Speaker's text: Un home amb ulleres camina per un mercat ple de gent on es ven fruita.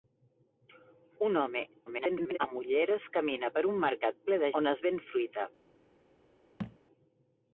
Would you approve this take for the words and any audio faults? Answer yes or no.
no